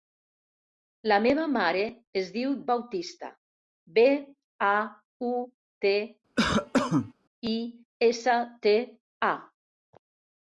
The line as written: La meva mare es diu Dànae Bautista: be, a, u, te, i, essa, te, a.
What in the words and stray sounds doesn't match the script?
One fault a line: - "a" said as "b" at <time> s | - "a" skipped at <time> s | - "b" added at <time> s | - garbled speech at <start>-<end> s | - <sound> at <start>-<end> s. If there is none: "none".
- "Dànae" skipped at 2.5 s
- cough at 6.4-7.1 s